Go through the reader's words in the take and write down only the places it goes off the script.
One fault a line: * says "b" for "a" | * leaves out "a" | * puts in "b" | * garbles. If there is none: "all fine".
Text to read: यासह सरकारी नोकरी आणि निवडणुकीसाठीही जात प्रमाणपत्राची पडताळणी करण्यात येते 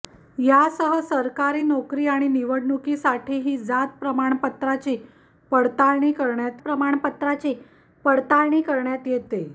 * puts in "प्रमाणपत्राची पडताळणी करण्यात"